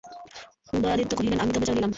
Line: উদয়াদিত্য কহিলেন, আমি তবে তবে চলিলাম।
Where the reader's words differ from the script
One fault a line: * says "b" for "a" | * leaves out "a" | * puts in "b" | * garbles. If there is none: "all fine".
* leaves out "তবে"